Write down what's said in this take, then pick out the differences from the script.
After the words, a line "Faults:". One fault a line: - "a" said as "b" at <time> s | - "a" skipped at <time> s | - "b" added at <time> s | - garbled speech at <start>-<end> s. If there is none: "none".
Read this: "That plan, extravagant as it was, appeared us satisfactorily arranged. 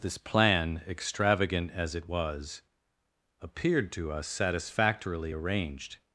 "This plan, extravagant as it was, appeared to us satisfactorily arranged.
Faults:
- "That" said as "This" at 0.0 s
- "to" added at 3.9 s